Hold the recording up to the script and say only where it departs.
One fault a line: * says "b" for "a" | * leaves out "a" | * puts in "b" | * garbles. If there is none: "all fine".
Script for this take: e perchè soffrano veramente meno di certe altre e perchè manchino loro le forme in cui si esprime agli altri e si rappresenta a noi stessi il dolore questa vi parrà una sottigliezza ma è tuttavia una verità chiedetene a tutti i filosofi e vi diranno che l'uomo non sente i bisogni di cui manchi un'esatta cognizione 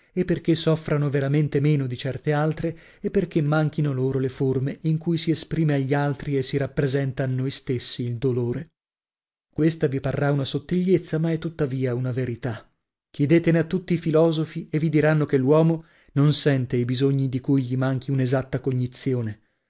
* puts in "gli"